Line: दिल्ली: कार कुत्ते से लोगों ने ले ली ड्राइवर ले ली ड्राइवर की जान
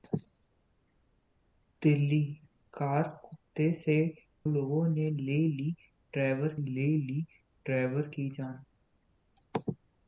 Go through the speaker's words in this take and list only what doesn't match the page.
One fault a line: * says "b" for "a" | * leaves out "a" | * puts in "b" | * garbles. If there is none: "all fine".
all fine